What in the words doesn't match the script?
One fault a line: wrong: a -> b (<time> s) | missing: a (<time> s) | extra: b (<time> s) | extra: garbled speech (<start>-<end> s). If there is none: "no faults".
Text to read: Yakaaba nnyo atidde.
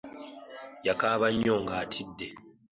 extra: nga (1.6 s)